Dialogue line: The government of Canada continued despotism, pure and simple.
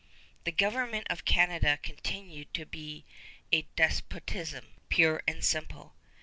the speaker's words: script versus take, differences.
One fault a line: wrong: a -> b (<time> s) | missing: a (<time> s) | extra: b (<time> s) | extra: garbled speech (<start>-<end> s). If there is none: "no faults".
extra: to be a (2.5 s)